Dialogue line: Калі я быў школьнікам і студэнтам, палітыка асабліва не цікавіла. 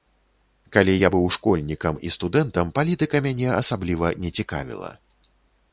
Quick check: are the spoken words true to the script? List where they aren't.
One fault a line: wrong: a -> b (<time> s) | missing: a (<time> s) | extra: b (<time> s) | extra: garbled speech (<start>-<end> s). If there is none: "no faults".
extra: мяне (3.3 s)